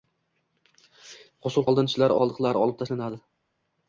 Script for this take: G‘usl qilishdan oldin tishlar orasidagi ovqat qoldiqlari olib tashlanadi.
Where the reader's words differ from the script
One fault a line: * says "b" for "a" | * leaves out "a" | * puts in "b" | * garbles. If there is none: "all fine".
* leaves out "qilishdan"
* leaves out "orasidagi ovqat"